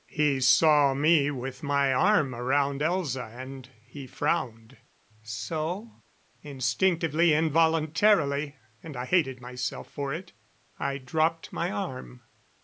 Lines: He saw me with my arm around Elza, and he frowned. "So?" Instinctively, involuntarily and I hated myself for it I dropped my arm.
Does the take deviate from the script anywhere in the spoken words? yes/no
no